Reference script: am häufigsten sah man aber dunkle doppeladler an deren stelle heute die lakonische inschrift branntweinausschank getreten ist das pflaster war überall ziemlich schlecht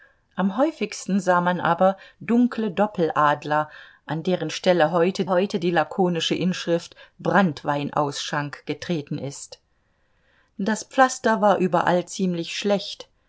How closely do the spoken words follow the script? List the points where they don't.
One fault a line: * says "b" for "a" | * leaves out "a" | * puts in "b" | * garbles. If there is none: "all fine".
* puts in "heute"